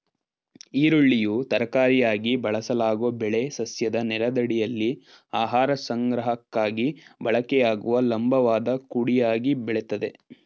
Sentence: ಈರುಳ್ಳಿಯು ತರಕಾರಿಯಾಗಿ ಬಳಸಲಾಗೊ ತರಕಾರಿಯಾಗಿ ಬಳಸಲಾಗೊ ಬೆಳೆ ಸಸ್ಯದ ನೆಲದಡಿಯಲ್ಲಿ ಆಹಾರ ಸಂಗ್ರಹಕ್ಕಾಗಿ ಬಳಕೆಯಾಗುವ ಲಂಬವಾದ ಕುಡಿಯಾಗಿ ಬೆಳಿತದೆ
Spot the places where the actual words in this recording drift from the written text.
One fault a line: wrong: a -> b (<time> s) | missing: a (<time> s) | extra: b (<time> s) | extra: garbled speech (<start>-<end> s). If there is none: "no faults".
missing: ತರಕಾರಿಯಾಗಿ ಬಳಸಲಾಗೊ (3.1 s)